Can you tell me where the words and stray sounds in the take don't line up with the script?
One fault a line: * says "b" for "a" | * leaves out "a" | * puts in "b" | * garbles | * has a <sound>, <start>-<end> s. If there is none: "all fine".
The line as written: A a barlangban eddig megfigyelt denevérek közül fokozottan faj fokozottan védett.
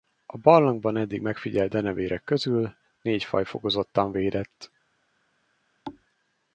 * leaves out "a"
* says "négy" for "fokozottan"
* has a thud, 5.9-6.1 s